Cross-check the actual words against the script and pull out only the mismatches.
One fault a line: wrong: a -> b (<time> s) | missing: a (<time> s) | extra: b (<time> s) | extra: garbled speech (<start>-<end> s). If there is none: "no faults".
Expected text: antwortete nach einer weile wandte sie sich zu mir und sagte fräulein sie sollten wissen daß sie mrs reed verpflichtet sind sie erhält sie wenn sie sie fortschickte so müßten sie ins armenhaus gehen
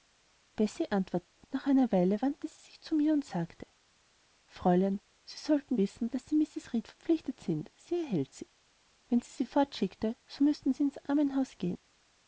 no faults